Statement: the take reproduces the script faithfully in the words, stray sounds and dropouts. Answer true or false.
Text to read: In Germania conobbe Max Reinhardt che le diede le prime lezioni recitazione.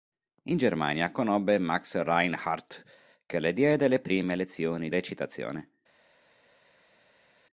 true